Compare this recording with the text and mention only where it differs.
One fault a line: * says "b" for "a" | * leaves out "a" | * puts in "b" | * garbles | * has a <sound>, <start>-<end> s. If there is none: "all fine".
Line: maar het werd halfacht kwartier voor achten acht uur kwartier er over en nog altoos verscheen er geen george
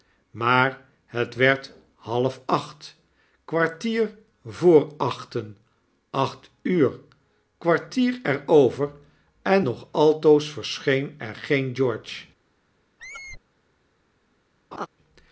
* has a squeak, 13.0-13.4 s
* has a laugh, 14.7-14.9 s